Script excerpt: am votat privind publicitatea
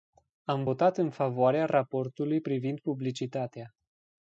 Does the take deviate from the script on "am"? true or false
false